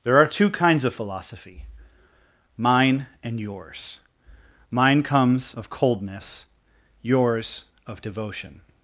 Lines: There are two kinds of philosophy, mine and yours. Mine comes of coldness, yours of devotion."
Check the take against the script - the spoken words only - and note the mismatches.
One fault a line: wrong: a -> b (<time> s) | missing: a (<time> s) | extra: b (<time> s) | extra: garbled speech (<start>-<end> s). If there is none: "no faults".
no faults